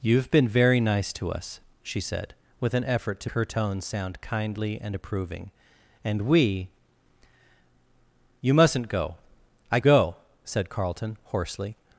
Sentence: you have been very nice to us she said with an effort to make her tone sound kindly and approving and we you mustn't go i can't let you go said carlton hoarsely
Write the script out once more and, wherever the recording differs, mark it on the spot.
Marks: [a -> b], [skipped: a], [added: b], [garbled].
you have been very nice to us she said with an effort to [skipped: make] her tone sound kindly and approving and we you mustn't go i [skipped: can't let you] go said carlton hoarsely